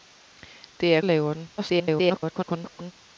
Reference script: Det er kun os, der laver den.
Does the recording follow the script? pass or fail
fail